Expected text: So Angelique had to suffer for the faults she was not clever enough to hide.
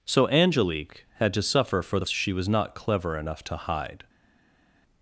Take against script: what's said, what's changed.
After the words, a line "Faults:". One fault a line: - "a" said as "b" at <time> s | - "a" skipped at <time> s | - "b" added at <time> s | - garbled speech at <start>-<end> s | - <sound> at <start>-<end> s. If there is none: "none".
So Angelique had to suffer for the she was not clever enough to hide.
Faults:
- "faults" skipped at 2.1 s